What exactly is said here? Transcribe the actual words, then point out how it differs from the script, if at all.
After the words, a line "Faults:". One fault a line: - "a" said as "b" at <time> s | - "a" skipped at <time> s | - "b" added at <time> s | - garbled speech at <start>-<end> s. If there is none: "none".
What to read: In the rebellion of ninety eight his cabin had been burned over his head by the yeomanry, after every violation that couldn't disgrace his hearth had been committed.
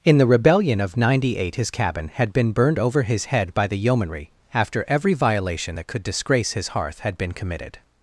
In the rebellion of ninety eight his cabin had been burned over his head by the yeomanry, after every violation that could disgrace his hearth had been committed.
Faults:
- "couldn't" said as "could" at 5.9 s